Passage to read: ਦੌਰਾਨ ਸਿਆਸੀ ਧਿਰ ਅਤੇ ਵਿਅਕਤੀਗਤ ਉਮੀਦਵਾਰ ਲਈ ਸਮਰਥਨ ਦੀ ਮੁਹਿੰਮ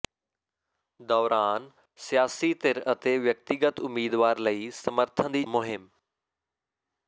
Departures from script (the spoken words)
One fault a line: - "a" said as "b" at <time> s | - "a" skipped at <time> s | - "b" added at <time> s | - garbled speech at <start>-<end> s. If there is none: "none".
none